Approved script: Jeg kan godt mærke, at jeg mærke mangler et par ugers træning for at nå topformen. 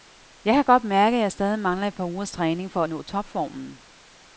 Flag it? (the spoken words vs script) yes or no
yes